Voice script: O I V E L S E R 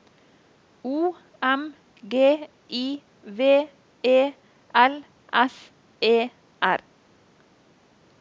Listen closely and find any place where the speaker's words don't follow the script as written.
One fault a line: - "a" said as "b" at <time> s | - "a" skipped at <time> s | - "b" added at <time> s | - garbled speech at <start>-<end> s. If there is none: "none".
- "M G" added at 1.4 s